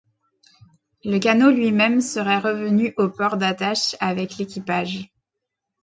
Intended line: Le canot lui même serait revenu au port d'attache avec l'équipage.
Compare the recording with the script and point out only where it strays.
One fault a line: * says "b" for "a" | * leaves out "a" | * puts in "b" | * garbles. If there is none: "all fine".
all fine